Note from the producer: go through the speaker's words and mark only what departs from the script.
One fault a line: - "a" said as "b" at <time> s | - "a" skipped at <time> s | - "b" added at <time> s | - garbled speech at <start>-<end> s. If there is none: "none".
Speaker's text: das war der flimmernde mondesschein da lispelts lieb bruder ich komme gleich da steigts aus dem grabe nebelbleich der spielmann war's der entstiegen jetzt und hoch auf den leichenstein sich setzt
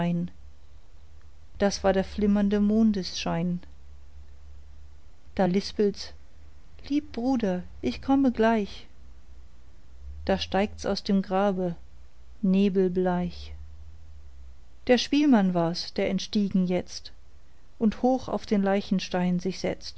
none